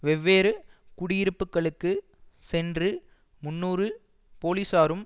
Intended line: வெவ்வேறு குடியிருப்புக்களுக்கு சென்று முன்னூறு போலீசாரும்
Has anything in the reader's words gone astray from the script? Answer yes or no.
no